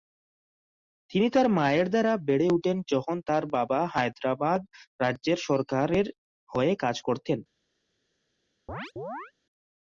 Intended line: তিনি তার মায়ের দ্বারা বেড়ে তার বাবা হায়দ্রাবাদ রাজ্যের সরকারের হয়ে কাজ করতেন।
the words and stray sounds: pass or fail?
fail